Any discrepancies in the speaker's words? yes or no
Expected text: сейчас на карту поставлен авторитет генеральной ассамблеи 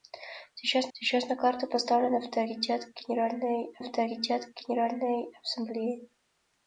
yes